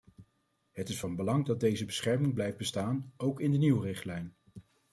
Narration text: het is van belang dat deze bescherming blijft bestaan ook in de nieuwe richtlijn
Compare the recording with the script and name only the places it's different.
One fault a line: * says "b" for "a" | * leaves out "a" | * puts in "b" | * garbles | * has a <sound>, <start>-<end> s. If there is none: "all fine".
all fine